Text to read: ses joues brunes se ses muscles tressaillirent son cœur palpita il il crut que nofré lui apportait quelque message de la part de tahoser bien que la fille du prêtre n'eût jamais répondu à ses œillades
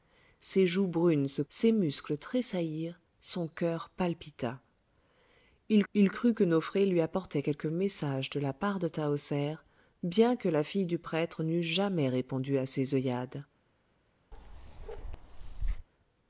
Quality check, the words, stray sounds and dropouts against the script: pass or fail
fail